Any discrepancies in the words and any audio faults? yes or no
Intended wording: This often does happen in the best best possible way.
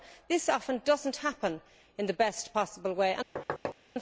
yes